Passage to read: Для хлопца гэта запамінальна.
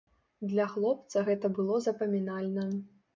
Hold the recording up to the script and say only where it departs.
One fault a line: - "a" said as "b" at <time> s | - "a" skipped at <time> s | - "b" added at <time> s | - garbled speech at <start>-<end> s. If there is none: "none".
- "было" added at 1.6 s